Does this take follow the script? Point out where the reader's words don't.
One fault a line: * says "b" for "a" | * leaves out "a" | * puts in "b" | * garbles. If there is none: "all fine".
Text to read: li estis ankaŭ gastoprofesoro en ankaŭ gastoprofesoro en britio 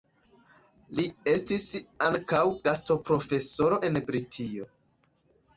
* leaves out "ankaŭ gastoprofesoro en"